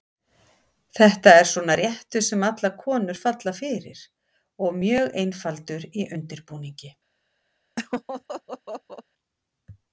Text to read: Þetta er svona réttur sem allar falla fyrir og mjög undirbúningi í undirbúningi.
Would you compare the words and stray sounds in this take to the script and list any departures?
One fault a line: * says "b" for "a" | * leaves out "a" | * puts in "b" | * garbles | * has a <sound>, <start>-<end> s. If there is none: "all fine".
* puts in "konur"
* says "einfaldur" for "undirbúningi"
* has a laugh, 7.8-9.0 s